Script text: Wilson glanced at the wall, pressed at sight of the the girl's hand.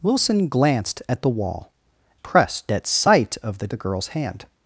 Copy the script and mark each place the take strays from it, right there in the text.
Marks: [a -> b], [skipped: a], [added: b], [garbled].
Wilson glanced at the wall, pressed at sight of the the girl's hand.